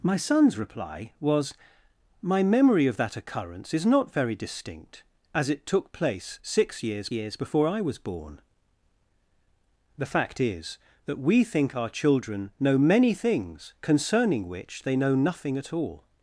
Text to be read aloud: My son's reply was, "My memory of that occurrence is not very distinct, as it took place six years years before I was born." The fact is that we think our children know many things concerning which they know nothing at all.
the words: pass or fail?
pass